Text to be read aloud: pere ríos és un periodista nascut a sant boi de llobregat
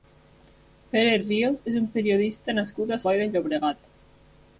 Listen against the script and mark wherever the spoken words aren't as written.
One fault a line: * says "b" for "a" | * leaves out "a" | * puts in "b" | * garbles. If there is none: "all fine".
* leaves out "sant"